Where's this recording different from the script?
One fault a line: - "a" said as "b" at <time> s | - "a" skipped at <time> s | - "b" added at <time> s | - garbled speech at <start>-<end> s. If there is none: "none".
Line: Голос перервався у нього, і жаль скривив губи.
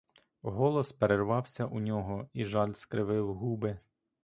none